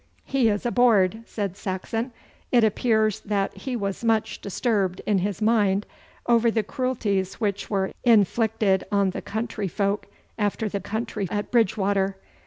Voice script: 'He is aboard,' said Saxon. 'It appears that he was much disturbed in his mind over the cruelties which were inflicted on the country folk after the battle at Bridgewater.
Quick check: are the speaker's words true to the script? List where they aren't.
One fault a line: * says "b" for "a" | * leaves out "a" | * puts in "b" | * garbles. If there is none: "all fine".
* says "country" for "battle"